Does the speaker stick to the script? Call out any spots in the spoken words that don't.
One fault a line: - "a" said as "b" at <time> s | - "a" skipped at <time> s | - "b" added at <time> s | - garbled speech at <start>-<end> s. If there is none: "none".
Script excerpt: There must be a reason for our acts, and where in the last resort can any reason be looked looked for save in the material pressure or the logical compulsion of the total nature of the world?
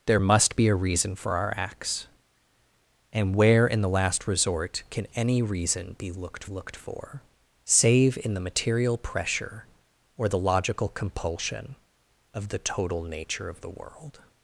none